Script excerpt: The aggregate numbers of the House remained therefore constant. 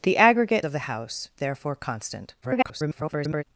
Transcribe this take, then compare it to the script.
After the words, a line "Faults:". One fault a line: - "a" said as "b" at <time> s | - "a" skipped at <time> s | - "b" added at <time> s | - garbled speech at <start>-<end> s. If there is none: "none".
The aggregate of the House therefore constant. [garbled]
Faults:
- "numbers" skipped at 0.7 s
- "remained" skipped at 1.3 s
- garbled speech at 2.4-3.4 s